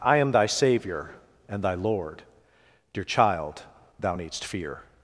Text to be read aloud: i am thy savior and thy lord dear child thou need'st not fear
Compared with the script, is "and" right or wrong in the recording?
right